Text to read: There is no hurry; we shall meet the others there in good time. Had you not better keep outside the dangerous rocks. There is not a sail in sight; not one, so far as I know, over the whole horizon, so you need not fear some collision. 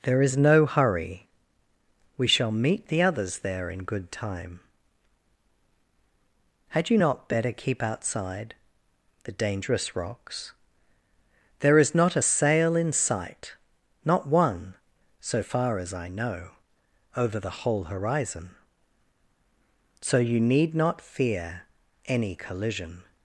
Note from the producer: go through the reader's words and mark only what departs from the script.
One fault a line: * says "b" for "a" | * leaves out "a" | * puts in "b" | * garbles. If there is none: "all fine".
* says "any" for "some"